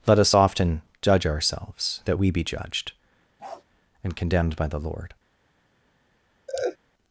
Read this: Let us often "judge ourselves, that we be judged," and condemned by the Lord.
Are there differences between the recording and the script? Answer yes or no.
no